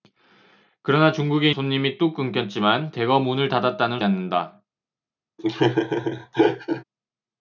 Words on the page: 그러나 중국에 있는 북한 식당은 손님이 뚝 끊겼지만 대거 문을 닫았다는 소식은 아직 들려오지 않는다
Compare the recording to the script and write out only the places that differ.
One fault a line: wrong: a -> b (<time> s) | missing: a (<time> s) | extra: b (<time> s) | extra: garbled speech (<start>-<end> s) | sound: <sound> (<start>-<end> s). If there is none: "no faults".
missing: 있는 북한 식당은 (1.5 s)
missing: 소식은 아직 들려오지 (4.0 s)
sound: laugh (5.4-6.8 s)